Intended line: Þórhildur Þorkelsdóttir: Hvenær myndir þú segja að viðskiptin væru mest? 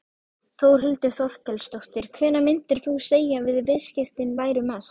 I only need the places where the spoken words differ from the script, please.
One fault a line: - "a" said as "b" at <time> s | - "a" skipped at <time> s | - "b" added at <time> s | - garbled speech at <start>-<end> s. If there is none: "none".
none